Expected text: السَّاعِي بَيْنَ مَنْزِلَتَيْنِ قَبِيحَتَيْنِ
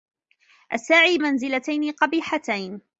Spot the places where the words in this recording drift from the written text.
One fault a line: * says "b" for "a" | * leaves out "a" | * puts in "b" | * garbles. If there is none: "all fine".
* leaves out "بَيْنَ"